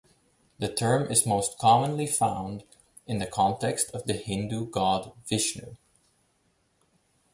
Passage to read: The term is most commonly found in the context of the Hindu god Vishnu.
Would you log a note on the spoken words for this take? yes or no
no